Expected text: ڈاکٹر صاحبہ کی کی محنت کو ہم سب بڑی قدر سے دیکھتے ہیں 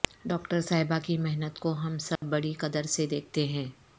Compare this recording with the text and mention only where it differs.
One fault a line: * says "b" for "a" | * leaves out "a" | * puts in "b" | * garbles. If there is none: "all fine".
* leaves out "کی"